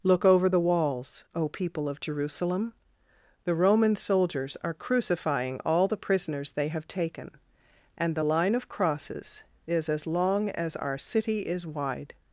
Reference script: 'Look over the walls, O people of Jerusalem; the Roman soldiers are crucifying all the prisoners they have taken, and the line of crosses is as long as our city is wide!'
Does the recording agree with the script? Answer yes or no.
yes